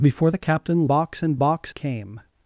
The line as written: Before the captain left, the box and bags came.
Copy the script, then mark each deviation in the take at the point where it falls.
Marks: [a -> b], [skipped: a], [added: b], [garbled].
Before the captain [skipped: left, the] box and [bags -> box] came.